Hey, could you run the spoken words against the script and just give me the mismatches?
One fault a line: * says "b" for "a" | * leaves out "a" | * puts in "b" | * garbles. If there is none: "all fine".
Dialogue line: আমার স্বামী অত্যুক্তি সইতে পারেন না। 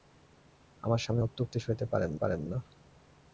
* puts in "পারেন"